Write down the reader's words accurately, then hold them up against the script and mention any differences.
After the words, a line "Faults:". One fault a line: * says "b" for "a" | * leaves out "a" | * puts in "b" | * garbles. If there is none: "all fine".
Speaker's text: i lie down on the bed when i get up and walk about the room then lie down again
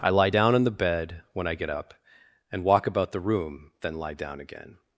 i lie down on the bed when i get up and walk about the room then lie down again
Faults:
all fine